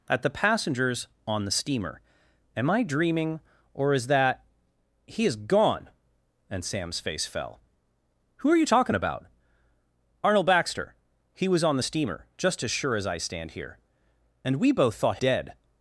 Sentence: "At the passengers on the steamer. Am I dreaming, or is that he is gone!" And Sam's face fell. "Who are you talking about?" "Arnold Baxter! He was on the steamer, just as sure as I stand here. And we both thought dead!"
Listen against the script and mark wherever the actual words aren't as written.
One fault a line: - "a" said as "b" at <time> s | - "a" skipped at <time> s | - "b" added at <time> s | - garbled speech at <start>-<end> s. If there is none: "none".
none